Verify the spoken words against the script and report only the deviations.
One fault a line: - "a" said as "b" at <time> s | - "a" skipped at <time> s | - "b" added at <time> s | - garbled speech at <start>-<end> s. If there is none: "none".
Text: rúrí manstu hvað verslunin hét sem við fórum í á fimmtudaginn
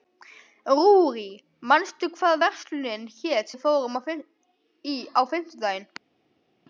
- "sem" skipped at 3.5 s